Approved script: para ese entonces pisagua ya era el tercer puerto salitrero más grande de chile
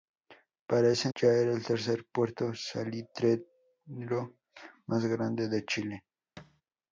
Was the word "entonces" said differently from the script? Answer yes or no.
yes